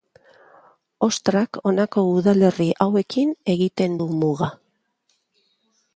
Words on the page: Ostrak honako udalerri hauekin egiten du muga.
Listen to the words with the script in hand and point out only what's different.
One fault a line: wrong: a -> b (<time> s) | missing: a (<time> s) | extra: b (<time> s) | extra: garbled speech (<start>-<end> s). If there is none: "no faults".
no faults